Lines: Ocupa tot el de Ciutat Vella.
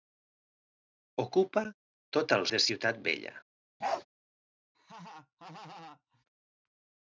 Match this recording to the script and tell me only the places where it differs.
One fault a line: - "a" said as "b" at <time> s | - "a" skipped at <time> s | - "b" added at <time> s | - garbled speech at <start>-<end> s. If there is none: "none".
none